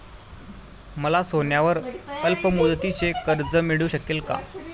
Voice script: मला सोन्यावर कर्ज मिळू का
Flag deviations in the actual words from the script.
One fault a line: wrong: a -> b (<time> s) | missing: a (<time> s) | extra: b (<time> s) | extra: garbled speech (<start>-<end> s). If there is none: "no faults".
extra: अल्पमुदतीचे (2.2 s)
extra: शकेल (3.9 s)